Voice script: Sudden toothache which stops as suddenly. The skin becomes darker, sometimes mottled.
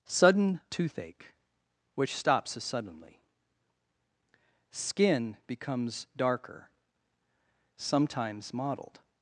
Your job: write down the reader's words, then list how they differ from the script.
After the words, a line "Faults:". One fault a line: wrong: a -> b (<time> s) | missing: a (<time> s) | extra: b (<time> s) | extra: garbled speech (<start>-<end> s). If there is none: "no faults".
Sudden toothache which stops as suddenly. skin becomes darker, sometimes mottled.
Faults:
missing: The (3.2 s)